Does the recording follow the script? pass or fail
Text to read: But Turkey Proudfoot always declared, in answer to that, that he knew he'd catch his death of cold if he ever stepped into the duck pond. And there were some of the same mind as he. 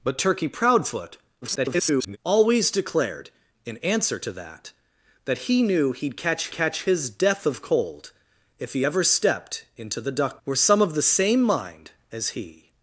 fail